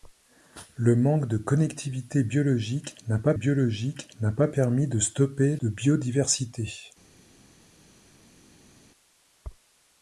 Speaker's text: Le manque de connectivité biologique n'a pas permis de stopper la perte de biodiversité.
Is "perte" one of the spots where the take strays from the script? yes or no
yes